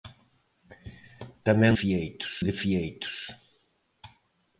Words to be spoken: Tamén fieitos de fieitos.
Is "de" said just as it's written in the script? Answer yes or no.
yes